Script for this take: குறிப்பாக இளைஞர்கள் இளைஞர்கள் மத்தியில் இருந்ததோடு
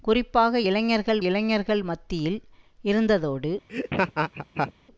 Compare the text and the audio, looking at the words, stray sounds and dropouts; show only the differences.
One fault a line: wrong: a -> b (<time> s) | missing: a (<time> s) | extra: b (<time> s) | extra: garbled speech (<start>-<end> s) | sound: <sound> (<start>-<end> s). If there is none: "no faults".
sound: laugh (3.7-4.7 s)